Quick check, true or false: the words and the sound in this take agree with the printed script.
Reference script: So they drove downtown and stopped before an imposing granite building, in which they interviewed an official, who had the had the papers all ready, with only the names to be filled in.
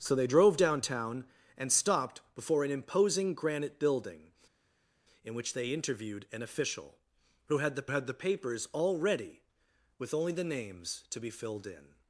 true